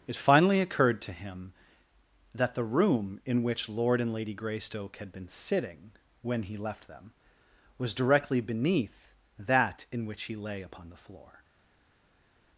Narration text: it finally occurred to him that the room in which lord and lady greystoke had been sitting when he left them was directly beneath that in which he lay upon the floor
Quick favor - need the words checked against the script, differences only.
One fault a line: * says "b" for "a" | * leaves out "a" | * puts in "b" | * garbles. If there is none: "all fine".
all fine